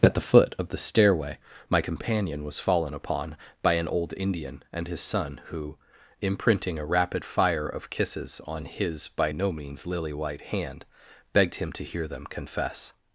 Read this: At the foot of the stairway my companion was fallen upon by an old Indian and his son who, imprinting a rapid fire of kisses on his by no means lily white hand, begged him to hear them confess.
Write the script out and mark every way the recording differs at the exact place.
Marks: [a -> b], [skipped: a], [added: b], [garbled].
At the foot of the stairway my companion was fallen upon by an old Indian and his son who, imprinting a rapid fire of kisses on his by no means lily white hand, begged him to hear them confess.